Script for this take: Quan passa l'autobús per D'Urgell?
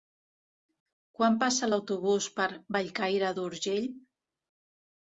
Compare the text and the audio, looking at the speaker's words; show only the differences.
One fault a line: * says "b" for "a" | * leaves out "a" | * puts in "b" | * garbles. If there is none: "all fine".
* puts in "Bellcaire"